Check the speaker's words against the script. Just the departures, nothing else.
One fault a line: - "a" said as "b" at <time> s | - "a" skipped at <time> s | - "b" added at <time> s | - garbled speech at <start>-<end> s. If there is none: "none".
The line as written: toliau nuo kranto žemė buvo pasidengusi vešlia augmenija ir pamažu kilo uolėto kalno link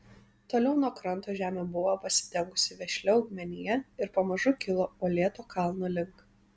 none